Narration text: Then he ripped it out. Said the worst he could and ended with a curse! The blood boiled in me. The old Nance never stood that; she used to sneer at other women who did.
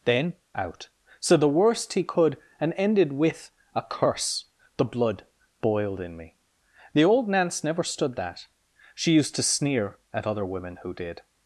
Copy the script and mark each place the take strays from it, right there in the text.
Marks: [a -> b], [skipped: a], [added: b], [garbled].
Then [skipped: he ripped it] out. Said the worst he could and ended with a curse! The blood boiled in me. The old Nance never stood that; she used to sneer at other women who did.